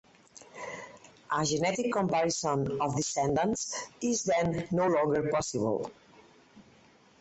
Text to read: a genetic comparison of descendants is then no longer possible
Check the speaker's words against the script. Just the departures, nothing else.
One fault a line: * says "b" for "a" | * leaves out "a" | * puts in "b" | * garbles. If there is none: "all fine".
all fine